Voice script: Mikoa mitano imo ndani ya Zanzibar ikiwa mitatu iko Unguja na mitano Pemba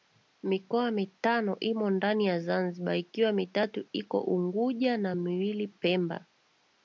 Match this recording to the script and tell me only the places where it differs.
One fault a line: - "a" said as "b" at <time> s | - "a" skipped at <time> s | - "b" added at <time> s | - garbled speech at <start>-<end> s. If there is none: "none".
- "mitano" said as "miwili" at 5.1 s